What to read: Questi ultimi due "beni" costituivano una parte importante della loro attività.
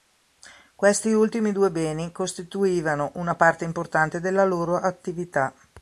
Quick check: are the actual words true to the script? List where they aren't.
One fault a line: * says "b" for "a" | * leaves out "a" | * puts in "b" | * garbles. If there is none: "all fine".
all fine